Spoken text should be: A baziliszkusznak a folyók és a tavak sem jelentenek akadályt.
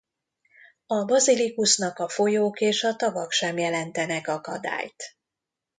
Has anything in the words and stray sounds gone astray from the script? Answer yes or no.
no